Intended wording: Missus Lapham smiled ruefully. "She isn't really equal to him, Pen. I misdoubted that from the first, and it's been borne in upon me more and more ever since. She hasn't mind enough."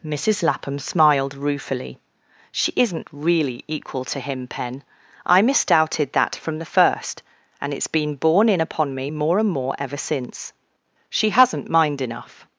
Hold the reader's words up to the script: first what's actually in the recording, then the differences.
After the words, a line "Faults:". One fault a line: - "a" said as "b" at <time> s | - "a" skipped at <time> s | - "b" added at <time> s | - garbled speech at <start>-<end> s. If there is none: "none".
Missus Lapham smiled ruefully. "She isn't really equal to him, Pen. I misdoubted that from the first, and it's been borne in upon me more and more ever since. She hasn't mind enough."
Faults:
none